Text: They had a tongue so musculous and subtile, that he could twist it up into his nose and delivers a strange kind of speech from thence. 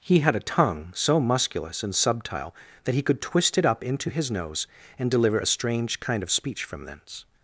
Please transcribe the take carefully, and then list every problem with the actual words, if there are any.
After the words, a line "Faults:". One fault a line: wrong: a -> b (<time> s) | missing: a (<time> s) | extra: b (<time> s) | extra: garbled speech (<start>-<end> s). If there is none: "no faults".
He had a tongue so musculous and subtile, that he could twist it up into his nose and deliver a strange kind of speech from thence.
Faults:
wrong: They -> He (0.0 s)
wrong: delivers -> deliver (5.1 s)